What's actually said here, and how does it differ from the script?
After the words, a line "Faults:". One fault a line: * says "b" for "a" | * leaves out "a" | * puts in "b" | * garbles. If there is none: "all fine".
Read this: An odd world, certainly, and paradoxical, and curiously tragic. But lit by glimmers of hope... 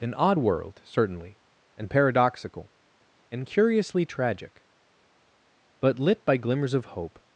An odd world, certainly, and paradoxical, and curiously tragic. But lit by glimmers of hope...
Faults:
all fine